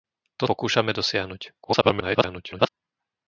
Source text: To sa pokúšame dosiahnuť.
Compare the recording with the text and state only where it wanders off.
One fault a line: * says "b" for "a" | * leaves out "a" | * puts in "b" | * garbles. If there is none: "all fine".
* leaves out "sa"
* garbles